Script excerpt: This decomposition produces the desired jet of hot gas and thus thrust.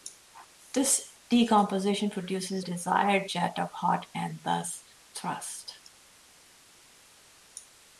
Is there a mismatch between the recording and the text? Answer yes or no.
yes